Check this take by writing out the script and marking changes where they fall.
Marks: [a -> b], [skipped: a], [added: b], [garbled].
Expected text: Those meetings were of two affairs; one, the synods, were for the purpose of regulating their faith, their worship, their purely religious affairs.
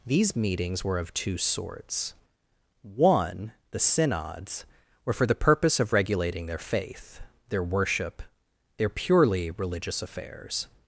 [Those -> These] meetings were of two [affairs; -> sorts] one, the synods, were for the purpose of regulating their faith, their worship, their purely religious affairs.